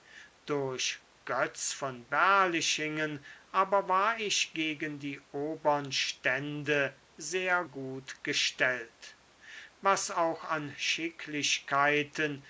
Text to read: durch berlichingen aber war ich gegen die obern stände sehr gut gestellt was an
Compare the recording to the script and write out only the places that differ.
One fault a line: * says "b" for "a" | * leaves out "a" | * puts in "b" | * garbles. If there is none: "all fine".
* puts in "götz von"
* puts in "auch"